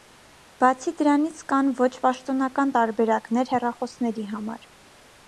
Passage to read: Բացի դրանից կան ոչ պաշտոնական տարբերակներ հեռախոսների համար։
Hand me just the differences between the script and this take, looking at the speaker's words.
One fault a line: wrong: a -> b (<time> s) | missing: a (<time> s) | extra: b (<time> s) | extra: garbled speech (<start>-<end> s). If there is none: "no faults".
no faults